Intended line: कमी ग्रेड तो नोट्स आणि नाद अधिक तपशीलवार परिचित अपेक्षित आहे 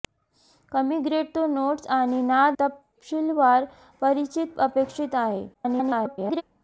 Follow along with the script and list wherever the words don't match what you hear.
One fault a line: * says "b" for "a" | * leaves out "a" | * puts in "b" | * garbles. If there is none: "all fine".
* leaves out "अधिक"
* garbles